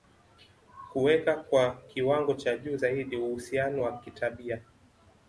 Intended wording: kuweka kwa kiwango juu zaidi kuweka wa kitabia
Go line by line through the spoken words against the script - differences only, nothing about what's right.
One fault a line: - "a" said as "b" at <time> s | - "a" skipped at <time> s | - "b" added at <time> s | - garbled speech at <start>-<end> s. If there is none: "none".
- "cha" added at 2.3 s
- "kuweka" said as "uhusiano" at 3.2 s